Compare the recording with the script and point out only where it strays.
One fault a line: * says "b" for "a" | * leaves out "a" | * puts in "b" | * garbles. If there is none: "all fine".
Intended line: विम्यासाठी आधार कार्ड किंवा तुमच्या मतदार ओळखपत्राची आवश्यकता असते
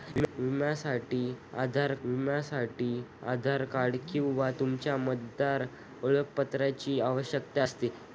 * puts in "विम्यासाठी आधार"